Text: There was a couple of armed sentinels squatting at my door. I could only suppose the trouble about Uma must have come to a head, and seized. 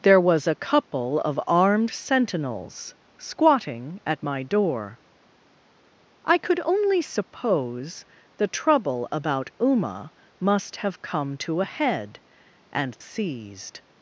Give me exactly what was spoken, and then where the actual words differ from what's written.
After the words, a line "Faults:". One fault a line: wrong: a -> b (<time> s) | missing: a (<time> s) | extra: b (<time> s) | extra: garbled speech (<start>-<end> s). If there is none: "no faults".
There was a couple of armed sentinels squatting at my door. I could only suppose the trouble about Uma must have come to a head, and seized.
Faults:
no faults